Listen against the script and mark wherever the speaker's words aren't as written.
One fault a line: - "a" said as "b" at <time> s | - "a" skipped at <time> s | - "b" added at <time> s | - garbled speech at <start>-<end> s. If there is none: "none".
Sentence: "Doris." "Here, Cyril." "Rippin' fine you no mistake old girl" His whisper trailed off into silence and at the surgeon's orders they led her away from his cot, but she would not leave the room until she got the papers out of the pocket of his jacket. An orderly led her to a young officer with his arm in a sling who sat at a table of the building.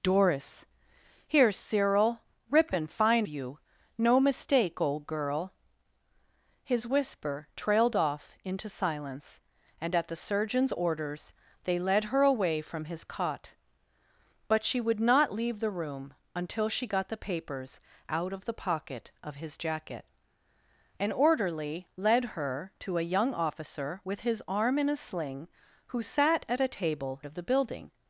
none